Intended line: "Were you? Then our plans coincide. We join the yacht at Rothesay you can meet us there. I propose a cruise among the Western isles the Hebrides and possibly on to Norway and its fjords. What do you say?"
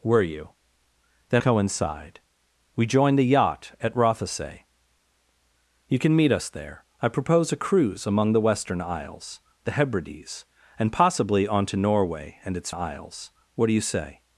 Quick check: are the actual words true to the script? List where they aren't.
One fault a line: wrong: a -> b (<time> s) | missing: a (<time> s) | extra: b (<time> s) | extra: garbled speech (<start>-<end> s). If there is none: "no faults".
missing: our plans (1.4 s)
wrong: fjords -> isles (12.7 s)